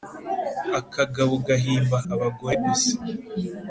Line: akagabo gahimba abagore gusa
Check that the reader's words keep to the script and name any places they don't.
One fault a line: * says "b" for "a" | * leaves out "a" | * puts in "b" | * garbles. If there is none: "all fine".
all fine